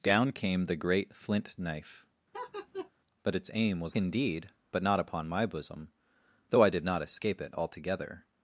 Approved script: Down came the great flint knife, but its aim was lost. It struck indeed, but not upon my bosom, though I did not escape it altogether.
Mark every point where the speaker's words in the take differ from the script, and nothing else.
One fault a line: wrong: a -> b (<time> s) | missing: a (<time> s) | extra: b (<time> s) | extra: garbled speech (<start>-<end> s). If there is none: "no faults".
missing: lost It struck (4.0 s)